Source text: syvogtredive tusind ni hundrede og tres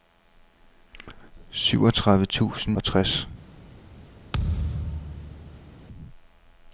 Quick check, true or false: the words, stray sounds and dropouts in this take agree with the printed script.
false